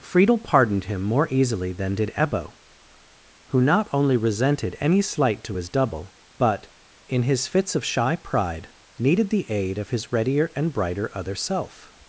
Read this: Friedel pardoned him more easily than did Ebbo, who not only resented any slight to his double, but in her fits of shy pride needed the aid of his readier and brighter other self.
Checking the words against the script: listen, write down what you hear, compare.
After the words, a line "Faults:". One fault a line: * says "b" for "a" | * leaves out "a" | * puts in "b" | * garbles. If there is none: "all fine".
Friedel pardoned him more easily than did Ebbo, who not only resented any slight to his double, but in his fits of shy pride needed the aid of his readier and brighter other self.
Faults:
* says "his" for "her"